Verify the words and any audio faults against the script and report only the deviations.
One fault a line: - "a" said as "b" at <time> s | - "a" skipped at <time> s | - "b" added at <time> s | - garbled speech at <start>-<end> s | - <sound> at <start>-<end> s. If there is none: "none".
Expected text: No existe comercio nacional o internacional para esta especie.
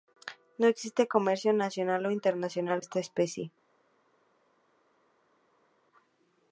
- "para" skipped at 2.8 s